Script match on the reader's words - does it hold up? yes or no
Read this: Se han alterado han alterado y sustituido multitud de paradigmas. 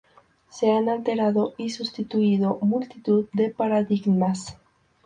no